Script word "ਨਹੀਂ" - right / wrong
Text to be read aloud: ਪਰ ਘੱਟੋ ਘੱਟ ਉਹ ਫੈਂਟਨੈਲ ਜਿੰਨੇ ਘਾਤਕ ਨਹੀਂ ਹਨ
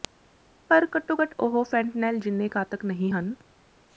right